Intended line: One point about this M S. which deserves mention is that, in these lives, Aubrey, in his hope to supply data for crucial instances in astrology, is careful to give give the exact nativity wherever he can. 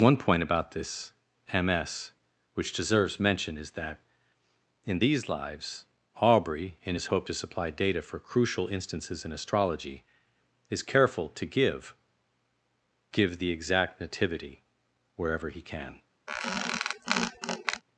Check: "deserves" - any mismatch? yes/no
no